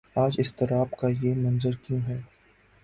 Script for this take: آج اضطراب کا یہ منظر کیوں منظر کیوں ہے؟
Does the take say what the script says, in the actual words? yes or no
no